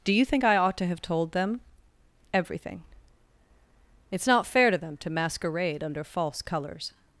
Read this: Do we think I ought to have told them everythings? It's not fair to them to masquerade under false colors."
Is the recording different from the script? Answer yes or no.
yes